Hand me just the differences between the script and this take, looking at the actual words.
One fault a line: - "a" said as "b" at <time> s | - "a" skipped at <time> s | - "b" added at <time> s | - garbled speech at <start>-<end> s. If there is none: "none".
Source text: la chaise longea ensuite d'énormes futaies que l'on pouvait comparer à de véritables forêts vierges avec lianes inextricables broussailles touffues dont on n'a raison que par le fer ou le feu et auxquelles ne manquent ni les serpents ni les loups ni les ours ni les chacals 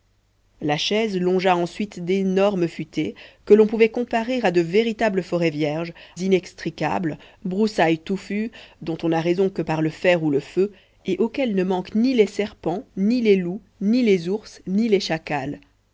- "avec lianes" skipped at 5.9 s